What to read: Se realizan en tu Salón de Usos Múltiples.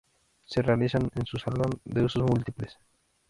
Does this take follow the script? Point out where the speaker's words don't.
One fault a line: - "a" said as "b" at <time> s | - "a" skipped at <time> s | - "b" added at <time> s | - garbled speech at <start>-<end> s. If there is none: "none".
- "tu" said as "su" at 1.2 s